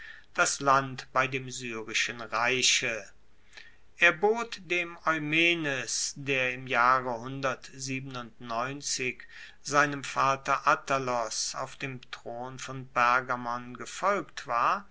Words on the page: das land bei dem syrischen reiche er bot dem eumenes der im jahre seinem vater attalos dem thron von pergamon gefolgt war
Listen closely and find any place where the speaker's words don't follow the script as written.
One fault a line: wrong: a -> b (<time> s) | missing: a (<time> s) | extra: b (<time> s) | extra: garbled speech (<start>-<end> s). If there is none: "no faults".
extra: auf (11.5 s)